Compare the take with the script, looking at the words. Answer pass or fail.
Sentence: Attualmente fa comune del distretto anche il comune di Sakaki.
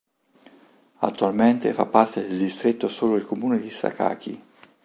fail